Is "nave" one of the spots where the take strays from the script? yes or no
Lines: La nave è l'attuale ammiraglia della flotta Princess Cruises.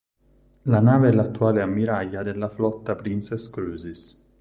no